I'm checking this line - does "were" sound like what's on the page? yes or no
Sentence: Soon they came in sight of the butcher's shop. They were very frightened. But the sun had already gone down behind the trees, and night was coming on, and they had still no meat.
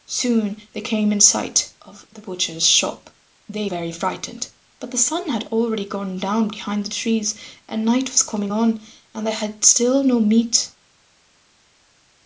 no